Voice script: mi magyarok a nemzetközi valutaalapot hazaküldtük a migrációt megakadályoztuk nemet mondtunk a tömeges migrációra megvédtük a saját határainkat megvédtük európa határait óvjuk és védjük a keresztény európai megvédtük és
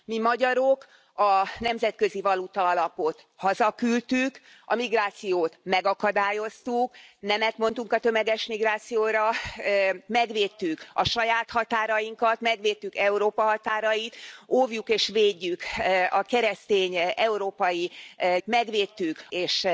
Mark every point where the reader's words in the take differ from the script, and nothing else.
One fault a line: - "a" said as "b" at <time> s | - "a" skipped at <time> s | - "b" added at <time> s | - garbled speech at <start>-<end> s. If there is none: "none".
none